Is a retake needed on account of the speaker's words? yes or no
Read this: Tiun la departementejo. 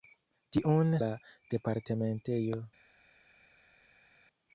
no